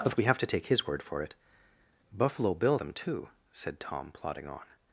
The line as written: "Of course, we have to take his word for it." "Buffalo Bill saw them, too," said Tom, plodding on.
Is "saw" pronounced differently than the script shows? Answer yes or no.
yes